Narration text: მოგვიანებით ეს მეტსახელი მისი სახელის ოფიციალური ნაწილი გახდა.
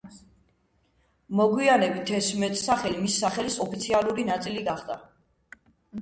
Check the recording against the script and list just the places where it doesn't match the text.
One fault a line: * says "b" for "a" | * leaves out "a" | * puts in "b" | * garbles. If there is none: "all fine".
all fine